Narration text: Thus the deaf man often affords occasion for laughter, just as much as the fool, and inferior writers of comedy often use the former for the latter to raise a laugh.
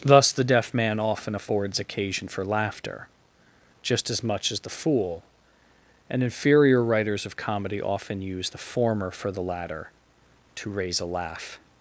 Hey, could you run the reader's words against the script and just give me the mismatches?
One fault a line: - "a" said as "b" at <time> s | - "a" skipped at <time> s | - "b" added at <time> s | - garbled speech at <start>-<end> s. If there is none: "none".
none